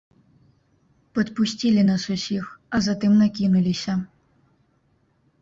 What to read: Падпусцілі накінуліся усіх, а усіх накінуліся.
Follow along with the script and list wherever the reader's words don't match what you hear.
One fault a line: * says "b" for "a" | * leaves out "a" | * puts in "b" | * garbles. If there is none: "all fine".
* says "нас" for "накінуліся"
* says "затым" for "усіх"